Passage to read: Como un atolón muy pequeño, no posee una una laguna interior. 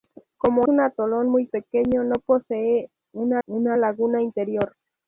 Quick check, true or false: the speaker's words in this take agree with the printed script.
true